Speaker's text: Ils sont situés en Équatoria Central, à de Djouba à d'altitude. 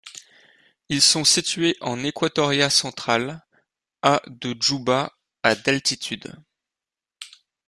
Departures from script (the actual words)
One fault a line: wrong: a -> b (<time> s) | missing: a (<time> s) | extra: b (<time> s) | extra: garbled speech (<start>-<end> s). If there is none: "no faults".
no faults